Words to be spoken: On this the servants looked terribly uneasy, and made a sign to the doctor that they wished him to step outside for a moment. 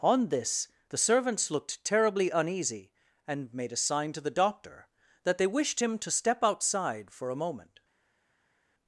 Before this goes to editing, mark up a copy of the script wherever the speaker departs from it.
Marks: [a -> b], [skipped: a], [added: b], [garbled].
On this the servants looked terribly uneasy, and made a sign to the doctor that they wished him to step outside for a moment.